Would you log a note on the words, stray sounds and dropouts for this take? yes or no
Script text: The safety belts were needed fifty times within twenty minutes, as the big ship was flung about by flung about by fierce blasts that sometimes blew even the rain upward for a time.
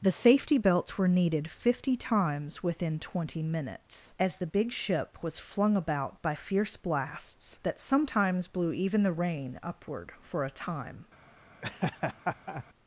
yes